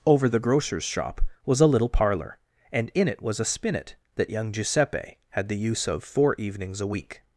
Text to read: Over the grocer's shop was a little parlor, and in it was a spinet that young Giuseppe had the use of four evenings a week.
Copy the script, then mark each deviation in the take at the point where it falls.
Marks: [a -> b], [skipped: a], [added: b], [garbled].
Over the grocer's shop was a little parlor, and in it was a spinet that young Giuseppe had the use of four evenings a week.